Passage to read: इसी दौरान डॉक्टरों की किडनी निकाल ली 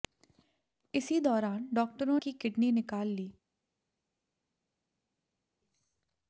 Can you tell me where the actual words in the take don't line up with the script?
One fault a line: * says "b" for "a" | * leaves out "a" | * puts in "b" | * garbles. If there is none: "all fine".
all fine